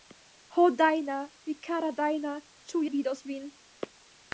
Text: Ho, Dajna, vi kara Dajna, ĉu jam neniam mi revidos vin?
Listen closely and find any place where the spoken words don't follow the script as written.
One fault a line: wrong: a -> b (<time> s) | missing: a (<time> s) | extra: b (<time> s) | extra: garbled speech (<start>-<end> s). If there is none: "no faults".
missing: jam neniam mi (2.8 s)